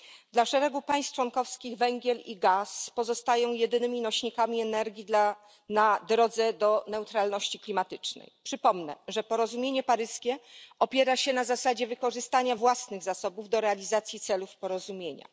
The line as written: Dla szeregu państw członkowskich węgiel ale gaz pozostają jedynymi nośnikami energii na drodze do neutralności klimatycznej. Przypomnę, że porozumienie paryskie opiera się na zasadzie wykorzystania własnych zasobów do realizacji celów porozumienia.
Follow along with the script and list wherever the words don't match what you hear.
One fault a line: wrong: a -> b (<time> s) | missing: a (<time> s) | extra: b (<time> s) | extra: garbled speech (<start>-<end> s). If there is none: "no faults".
wrong: ale -> i (2.2 s)